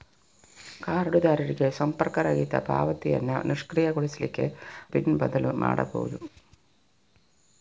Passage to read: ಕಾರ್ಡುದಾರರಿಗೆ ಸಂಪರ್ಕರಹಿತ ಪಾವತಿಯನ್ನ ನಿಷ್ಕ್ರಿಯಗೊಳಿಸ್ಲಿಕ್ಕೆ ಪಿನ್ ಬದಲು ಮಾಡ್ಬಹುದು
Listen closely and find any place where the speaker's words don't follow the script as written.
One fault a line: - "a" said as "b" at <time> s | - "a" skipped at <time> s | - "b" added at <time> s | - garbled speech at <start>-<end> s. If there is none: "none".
none